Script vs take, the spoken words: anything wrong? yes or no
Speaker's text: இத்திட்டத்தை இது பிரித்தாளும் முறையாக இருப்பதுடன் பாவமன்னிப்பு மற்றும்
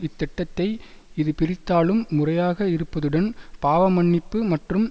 no